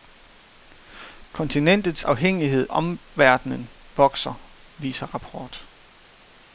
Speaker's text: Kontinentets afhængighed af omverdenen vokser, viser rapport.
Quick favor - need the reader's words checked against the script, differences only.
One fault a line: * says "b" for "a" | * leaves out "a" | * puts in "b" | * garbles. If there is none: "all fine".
* leaves out "af"